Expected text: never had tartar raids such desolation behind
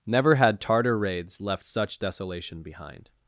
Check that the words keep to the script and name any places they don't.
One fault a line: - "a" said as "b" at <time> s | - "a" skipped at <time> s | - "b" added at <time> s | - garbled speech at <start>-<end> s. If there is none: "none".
- "left" added at 1.4 s